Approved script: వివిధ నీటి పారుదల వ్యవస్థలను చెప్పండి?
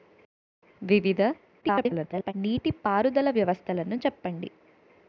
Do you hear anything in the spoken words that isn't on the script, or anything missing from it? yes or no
yes